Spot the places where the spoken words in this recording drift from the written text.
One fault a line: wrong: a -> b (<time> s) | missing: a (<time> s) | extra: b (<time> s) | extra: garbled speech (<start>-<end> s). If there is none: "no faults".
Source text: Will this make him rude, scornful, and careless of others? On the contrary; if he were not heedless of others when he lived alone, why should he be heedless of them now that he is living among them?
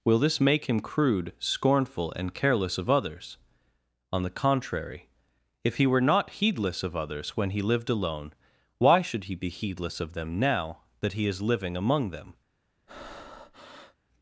wrong: rude -> crude (0.8 s)